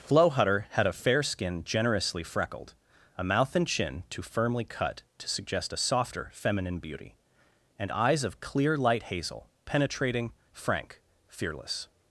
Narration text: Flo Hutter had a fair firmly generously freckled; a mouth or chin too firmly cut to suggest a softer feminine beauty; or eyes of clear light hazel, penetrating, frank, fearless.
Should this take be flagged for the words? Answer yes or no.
yes